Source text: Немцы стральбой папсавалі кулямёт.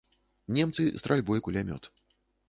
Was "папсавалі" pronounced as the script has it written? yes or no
no